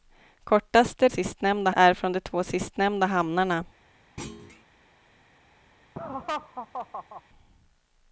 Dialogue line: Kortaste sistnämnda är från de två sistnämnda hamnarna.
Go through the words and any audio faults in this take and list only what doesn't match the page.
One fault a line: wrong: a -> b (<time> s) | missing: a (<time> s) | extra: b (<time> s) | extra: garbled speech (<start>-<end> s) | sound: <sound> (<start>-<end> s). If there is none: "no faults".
sound: thud (4.2-4.6 s)
sound: laugh (6.0-7.2 s)